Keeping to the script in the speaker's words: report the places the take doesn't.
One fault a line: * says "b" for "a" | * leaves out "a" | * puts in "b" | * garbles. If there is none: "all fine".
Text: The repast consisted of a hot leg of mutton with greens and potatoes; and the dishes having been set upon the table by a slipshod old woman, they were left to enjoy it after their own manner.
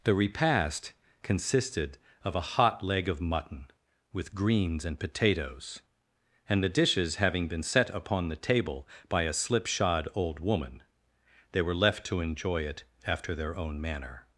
all fine